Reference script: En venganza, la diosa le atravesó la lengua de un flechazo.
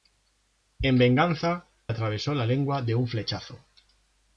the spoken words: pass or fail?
fail